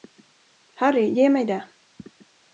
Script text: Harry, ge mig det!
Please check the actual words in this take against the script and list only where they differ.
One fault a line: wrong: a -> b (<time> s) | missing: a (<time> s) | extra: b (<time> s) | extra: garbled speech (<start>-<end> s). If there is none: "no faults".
no faults